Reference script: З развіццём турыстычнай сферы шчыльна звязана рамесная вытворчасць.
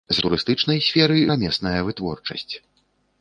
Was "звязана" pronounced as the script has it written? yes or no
no